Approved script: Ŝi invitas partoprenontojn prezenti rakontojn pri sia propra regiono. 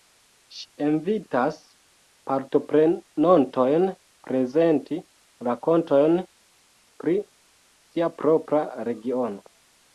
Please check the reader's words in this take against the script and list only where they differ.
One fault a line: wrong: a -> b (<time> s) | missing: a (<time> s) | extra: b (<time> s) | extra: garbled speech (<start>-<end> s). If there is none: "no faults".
no faults